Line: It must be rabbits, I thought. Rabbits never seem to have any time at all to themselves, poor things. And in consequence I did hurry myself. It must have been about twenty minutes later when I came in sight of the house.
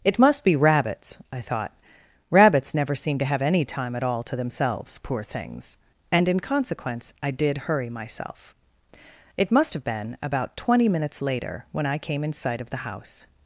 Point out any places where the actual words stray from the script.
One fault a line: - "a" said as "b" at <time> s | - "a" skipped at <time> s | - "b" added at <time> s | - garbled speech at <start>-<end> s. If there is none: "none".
none